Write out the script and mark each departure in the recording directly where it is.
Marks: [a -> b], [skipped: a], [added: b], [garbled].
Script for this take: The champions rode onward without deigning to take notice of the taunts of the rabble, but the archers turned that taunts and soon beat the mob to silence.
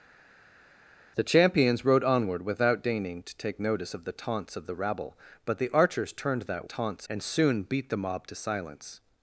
The champions rode onward without deigning to take notice of the taunts of the rabble, but the archers turned that taunts and soon beat the mob to silence.